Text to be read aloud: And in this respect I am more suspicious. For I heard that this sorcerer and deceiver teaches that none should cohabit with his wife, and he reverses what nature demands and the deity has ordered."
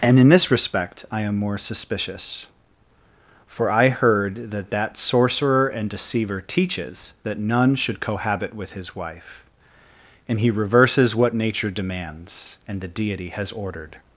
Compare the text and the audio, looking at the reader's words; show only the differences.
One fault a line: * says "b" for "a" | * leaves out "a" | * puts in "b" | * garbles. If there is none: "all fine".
* says "that" for "this"